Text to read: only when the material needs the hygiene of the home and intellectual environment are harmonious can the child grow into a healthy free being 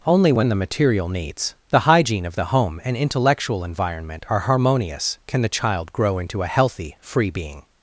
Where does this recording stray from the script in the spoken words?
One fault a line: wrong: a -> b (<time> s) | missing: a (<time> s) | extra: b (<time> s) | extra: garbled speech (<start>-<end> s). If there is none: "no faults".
no faults